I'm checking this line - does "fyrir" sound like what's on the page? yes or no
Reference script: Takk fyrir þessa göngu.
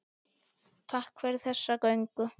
yes